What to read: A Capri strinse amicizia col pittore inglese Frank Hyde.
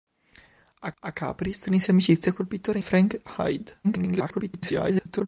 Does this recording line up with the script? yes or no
no